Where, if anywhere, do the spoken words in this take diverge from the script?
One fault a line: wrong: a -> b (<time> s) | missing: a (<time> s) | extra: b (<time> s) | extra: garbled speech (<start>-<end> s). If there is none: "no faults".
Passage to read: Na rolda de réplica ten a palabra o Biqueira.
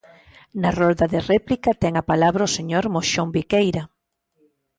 extra: señor Moxón (2.6 s)